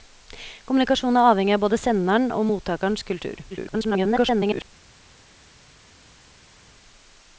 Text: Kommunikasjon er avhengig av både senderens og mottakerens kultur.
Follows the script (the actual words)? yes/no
no